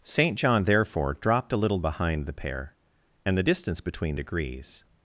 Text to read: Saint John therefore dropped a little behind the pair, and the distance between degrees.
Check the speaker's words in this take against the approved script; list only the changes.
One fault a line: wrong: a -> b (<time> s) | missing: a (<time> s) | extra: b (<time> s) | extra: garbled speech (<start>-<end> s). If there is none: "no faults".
no faults